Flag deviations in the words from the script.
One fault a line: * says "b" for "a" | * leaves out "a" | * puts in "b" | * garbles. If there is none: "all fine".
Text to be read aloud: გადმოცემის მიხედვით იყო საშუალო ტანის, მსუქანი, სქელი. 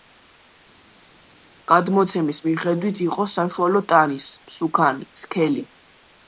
all fine